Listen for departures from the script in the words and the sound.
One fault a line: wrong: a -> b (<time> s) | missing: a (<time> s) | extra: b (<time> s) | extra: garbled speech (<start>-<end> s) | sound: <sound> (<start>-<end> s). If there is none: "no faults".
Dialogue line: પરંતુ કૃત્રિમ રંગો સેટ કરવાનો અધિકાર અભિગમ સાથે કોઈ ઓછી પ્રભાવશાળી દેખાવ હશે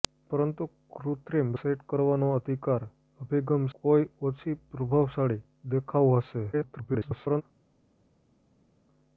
missing: રંગો (1.5 s)
missing: સાથે (3.6 s)
extra: garbled speech (6.5-7.4 s)